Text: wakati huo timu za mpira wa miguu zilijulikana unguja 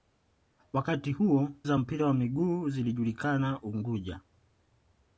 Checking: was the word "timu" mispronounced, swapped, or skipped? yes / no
yes